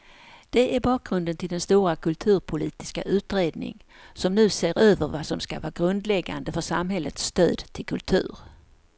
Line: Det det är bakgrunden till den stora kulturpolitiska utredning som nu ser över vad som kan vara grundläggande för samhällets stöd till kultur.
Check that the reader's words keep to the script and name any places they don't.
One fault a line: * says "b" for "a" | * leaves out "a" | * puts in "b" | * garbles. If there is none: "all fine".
* leaves out "det"
* says "ska" for "kan"